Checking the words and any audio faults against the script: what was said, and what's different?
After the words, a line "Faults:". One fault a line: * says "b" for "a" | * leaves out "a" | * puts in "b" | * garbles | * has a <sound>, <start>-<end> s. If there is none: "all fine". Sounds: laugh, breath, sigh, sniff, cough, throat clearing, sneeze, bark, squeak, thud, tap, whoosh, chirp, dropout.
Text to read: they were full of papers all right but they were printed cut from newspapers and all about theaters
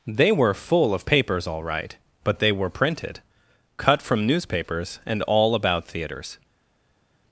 they were full of papers all right but they were printed cut from newspapers and all about theaters
Faults:
all fine